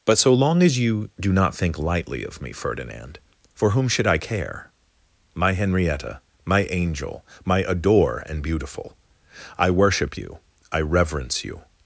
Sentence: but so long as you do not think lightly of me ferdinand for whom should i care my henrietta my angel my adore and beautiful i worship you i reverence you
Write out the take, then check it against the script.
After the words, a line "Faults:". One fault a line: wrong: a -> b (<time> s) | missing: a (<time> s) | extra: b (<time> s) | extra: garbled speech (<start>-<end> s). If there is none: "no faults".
but so long as you do not think lightly of me ferdinand for whom should i care my henrietta my angel my adore and beautiful i worship you i reverence you
Faults:
no faults